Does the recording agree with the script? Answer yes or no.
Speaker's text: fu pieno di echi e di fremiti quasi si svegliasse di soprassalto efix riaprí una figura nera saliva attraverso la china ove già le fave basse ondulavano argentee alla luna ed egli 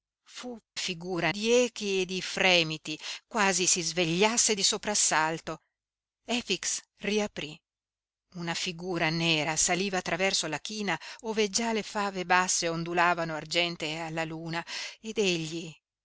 no